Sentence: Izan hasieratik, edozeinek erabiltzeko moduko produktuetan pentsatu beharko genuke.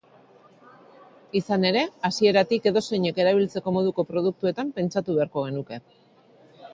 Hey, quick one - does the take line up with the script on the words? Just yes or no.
no